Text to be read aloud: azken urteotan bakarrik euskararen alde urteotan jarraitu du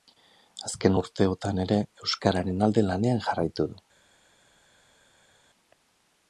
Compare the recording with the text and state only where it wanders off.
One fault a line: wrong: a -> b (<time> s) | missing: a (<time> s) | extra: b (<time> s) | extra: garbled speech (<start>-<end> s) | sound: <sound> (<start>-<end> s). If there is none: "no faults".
wrong: bakarrik -> ere (1.6 s)
wrong: urteotan -> lanean (2.9 s)